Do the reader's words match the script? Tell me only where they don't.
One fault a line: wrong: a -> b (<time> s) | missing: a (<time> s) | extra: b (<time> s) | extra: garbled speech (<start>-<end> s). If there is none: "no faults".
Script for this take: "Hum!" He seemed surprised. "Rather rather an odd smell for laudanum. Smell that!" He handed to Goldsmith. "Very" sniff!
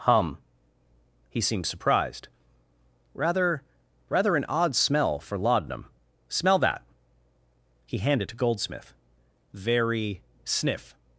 no faults